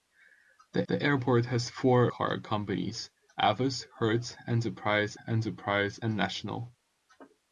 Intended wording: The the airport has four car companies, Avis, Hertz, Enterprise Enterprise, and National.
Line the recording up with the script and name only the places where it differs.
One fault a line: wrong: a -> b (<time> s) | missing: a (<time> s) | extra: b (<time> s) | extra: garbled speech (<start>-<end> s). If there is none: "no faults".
no faults